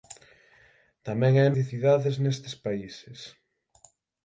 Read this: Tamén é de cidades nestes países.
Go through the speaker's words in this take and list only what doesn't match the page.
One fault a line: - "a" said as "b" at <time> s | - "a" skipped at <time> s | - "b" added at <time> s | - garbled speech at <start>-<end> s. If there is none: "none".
none